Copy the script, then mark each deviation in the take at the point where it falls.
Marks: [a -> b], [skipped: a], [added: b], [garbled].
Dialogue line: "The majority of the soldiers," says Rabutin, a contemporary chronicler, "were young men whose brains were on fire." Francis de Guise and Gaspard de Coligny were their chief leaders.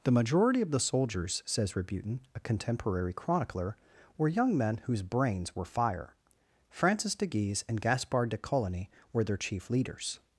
"The majority of the soldiers," says Rabutin, a contemporary chronicler, "were young men whose brains were [skipped: on] fire." Francis de Guise and Gaspard de Coligny were their chief leaders.